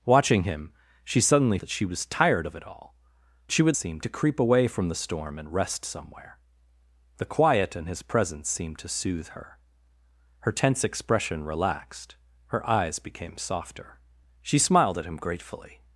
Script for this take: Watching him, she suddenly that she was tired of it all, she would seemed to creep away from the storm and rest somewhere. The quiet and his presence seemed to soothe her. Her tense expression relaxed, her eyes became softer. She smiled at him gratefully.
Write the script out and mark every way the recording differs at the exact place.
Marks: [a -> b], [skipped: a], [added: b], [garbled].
Watching him, she suddenly that she was tired of it all, she would seemed to creep away from the storm and rest somewhere. The quiet and his presence seemed to soothe her. Her tense expression relaxed, her eyes became softer. She smiled at him gratefully.